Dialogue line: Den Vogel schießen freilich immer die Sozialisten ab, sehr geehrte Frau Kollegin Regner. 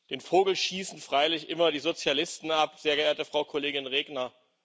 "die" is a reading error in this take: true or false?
false